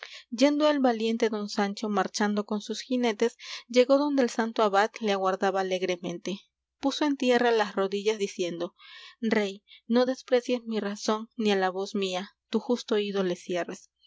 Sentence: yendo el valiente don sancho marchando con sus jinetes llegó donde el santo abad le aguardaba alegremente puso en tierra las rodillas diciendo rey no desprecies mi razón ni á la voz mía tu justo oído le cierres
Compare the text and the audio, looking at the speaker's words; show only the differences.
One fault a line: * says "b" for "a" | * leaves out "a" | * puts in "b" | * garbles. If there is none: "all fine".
all fine